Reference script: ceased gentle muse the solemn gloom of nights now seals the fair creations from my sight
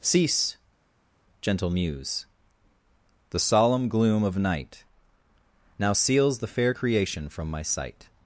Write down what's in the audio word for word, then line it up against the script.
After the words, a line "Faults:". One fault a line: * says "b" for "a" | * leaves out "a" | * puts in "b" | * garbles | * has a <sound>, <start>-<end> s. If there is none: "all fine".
cease gentle muse the solemn gloom of night now seals the fair creation from my sight
Faults:
* says "cease" for "ceased"
* says "night" for "nights"
* says "creation" for "creations"